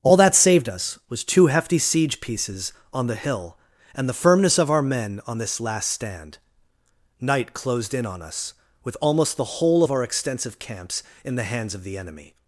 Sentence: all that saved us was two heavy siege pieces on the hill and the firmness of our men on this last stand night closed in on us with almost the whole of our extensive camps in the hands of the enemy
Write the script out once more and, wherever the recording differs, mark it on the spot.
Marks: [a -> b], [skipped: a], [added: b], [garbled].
all that saved us was two [heavy -> hefty] siege pieces on the hill and the firmness of our men on this last stand night closed in on us with almost the whole of our extensive camps in the hands of the enemy